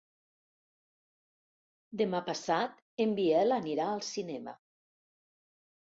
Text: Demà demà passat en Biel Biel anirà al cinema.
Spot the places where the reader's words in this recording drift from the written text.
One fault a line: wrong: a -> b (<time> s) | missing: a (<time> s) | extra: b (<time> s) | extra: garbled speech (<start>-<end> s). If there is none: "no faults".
missing: demà (2.2 s)
missing: Biel (3.6 s)